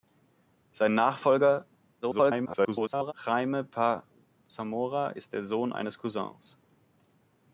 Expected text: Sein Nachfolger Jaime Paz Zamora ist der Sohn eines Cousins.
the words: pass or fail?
fail